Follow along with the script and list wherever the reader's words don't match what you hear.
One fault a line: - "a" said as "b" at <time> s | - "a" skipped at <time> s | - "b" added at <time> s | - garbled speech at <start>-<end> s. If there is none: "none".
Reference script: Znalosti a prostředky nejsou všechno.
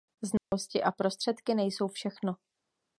none